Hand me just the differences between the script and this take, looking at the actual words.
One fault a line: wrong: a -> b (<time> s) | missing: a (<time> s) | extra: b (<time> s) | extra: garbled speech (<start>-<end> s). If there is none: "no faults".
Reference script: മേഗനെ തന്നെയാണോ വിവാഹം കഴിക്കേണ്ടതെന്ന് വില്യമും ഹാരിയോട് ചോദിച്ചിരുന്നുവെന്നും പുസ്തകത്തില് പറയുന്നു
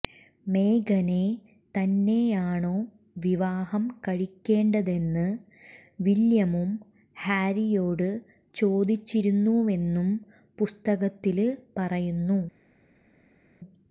no faults